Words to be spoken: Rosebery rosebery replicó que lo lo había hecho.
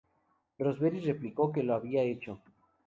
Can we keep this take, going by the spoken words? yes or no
no